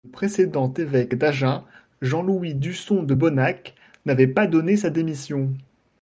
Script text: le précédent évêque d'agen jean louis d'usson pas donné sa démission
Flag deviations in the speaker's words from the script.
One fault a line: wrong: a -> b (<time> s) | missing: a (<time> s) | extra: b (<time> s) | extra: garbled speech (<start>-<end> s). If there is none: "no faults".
extra: de bonnac n'avait (3.0 s)